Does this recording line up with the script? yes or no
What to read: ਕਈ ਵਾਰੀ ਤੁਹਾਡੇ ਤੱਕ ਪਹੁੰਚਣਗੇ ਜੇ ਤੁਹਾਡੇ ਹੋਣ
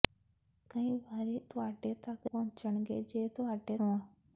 yes